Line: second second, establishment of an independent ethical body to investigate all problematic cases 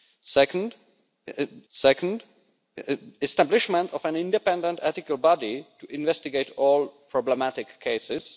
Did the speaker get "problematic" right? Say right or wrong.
right